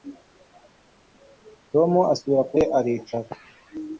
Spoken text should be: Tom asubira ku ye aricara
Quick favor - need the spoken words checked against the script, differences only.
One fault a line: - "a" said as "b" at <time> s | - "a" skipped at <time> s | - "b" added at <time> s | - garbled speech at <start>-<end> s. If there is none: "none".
none